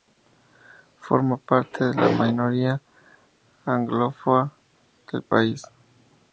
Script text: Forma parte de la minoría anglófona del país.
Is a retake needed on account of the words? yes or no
no